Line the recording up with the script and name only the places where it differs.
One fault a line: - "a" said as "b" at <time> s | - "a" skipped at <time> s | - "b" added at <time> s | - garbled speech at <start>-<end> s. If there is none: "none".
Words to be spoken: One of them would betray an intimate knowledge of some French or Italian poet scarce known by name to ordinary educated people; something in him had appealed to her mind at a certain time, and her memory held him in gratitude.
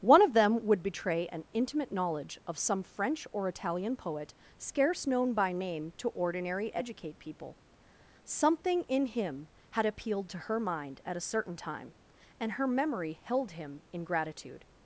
- "educated" said as "educate" at 6.7 s